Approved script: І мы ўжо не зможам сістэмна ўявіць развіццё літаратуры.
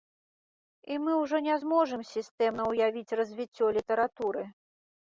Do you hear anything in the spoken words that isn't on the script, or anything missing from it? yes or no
no